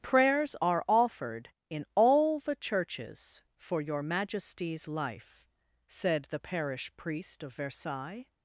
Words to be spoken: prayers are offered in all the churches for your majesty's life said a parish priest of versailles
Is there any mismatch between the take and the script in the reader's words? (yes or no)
yes